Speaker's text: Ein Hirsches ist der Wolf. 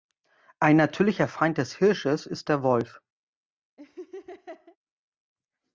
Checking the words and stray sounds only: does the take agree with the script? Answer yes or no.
no